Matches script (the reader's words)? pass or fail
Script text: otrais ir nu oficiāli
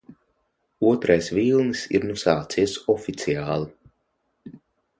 fail